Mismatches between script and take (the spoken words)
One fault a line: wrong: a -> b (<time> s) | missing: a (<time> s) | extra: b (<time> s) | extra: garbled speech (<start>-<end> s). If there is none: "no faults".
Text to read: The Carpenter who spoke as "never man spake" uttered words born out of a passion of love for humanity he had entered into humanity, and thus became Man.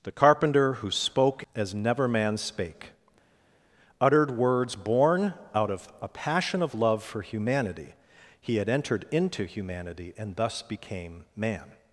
no faults